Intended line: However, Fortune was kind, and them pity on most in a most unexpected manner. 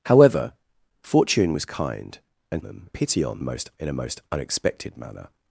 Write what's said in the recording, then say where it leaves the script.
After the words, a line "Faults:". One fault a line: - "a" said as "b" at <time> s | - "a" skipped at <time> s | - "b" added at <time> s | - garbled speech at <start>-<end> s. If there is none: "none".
However, Fortune was kind, and them pity on most in a most unexpected manner.
Faults:
none